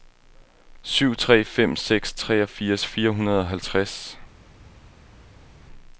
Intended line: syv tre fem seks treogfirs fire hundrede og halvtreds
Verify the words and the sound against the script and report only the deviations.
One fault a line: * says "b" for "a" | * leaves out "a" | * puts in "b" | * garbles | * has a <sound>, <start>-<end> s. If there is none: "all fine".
all fine